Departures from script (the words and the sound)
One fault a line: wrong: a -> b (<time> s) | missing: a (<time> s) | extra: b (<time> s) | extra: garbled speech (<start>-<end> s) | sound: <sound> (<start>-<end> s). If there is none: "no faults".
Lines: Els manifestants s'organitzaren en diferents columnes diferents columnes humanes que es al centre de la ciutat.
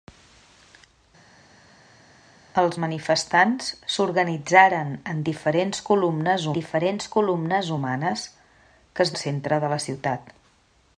no faults